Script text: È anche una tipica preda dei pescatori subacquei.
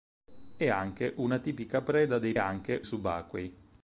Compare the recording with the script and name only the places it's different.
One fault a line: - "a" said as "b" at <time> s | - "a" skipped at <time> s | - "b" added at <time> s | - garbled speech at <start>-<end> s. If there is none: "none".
- "pescatori" said as "anche" at 2.4 s